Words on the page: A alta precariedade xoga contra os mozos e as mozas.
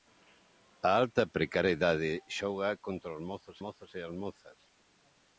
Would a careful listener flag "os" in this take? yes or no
no